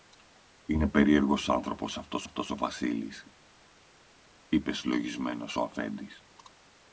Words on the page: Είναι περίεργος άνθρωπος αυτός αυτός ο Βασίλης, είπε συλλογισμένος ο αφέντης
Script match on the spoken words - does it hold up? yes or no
yes